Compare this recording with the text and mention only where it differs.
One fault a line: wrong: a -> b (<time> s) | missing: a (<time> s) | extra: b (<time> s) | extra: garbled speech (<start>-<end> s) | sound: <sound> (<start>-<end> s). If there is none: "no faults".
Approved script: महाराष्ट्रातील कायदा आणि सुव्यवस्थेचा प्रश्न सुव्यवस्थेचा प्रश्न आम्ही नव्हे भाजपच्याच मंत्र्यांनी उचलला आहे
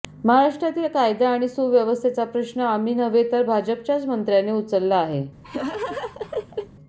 missing: सुव्यवस्थेचा प्रश्न (2.6 s)
extra: तर (3.3 s)
sound: laugh (5.4-6.7 s)